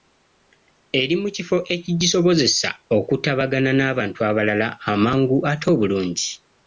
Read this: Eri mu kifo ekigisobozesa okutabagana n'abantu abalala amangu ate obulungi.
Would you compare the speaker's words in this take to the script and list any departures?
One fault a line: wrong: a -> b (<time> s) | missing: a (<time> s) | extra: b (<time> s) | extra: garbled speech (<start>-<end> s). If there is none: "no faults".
no faults